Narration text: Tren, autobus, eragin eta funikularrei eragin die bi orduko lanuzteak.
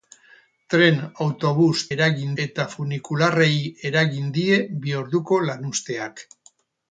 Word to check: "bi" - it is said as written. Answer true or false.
true